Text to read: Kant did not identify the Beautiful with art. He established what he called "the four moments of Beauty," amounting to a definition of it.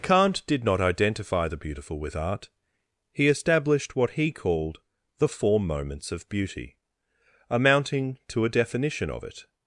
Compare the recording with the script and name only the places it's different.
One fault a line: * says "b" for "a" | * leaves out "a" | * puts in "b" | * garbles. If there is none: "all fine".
all fine